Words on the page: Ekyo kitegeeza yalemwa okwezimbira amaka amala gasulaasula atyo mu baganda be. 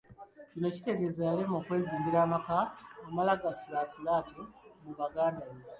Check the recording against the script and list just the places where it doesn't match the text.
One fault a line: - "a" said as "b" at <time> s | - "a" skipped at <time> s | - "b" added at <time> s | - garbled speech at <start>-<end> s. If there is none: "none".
- "Ekyo" said as "Kino" at 0.5 s